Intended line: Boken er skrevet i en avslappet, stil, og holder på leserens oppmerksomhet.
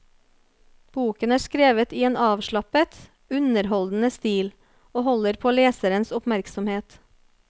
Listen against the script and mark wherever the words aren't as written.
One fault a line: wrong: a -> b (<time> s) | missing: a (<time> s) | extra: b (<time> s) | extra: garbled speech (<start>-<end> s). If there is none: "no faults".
extra: underholdende (3.4 s)